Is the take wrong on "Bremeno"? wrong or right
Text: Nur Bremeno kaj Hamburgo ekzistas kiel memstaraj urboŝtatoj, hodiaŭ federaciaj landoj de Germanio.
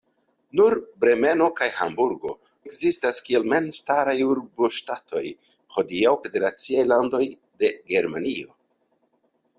right